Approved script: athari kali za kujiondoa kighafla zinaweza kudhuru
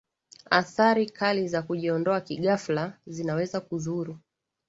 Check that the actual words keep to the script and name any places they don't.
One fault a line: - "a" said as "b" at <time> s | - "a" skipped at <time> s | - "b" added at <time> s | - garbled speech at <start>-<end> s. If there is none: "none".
none